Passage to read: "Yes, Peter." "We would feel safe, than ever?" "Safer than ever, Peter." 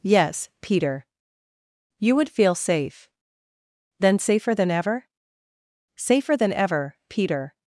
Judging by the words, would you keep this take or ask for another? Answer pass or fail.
fail